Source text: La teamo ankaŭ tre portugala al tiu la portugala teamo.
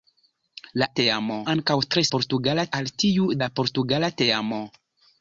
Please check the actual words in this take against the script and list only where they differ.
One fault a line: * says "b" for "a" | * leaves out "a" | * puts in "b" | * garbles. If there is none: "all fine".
all fine